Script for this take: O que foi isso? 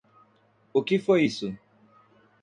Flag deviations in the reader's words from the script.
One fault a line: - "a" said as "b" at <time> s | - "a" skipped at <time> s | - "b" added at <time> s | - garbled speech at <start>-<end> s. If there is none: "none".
none